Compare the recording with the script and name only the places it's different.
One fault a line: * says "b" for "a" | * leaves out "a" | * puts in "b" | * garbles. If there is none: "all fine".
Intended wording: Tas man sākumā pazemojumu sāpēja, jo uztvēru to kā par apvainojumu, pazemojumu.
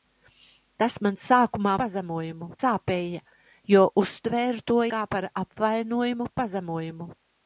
all fine